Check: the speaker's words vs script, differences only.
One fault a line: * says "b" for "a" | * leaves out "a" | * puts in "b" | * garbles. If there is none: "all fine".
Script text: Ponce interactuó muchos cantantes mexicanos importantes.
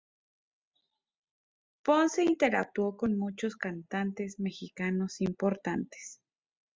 * puts in "con"